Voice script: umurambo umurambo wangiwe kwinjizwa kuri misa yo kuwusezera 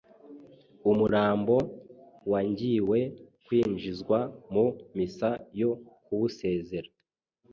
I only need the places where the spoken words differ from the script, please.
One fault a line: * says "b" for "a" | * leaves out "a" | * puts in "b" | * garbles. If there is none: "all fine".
* leaves out "umurambo"
* says "mu" for "kuri"